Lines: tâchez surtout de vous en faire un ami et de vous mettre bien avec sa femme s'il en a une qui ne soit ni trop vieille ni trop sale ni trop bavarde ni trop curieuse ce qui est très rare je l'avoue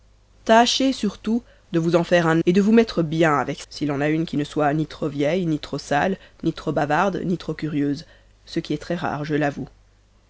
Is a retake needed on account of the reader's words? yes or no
yes